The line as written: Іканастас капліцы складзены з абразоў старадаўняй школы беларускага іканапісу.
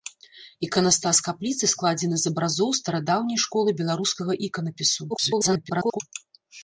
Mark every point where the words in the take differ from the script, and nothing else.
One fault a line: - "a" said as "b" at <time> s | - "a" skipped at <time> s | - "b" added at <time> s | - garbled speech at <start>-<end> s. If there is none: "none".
- garbled speech at 5.1-6.0 s